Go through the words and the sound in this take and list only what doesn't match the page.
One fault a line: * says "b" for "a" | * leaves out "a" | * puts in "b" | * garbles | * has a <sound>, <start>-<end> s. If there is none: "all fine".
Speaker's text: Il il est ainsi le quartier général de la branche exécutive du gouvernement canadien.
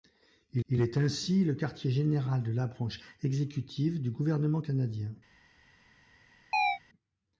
* has a chirp, 6.5-6.8 s